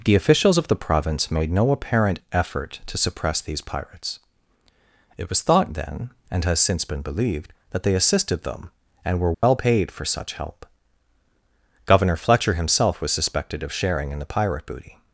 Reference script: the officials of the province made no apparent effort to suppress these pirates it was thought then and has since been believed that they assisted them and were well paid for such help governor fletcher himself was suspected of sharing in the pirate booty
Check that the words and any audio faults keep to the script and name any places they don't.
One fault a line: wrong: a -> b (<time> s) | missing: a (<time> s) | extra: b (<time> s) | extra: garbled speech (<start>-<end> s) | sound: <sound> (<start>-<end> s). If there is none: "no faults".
sound: dropout (9.3-9.4 s)